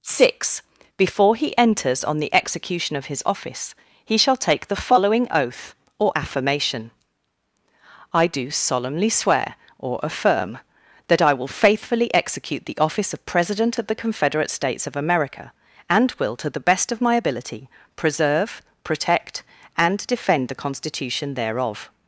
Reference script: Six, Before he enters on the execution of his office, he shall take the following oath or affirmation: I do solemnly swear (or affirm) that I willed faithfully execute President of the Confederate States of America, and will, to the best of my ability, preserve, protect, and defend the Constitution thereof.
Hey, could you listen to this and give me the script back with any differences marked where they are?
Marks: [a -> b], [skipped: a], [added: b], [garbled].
Six, Before he enters on the execution of his office, he shall take the following oath or affirmation: I do solemnly swear (or affirm) that I [willed -> will] faithfully execute [added: the office of] President of the Confederate States of America, and will, to the best of my ability, preserve, protect, and defend the Constitution thereof.